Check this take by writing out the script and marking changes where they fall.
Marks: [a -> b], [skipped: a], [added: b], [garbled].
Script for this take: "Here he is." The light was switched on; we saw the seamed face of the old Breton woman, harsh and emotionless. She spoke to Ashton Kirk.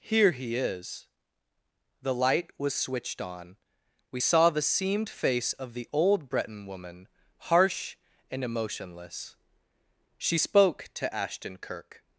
"Here he is." The light was switched on; we saw the seamed face of the old Breton woman, harsh and emotionless. She spoke to Ashton Kirk.